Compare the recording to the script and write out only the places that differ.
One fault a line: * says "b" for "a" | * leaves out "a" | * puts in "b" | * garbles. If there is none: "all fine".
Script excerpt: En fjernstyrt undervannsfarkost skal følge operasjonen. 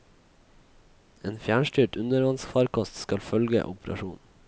all fine